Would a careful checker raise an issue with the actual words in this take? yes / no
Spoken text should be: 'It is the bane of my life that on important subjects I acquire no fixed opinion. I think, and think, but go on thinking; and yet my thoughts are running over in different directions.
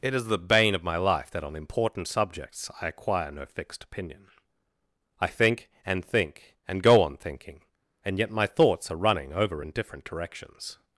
yes